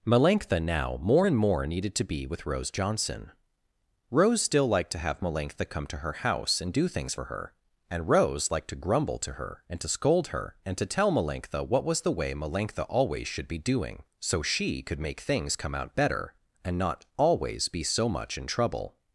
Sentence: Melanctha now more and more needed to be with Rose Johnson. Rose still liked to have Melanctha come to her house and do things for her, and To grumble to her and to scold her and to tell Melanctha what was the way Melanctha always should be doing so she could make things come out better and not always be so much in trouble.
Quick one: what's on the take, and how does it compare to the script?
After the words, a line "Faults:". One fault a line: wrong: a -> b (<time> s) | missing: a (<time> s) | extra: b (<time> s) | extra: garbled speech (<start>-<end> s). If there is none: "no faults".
Melanctha now more and more needed to be with Rose Johnson. Rose still liked to have Melanctha come to her house and do things for her, and Rose liked to grumble to her and to scold her and to tell Melanctha what was the way Melanctha always should be doing so she could make things come out better and not always be so much in trouble.
Faults:
extra: Rose liked (8.1 s)